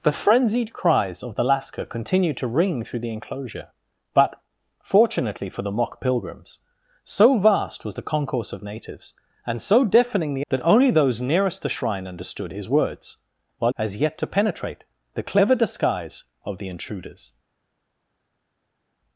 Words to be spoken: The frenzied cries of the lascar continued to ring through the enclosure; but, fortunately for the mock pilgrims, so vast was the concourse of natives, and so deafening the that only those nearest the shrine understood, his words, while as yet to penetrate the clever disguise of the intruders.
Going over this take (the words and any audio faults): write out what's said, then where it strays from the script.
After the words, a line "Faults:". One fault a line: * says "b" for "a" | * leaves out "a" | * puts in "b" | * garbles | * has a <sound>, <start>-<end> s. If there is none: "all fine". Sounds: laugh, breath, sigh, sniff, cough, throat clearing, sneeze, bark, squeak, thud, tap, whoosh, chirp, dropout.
The frenzied cries of the lascar continued to ring through the enclosure; but, fortunately for the mock pilgrims, so vast was the concourse of natives, and so deafening the that only those nearest the shrine understood, his words, while as yet to penetrate the clever disguise of the intruders.
Faults:
all fine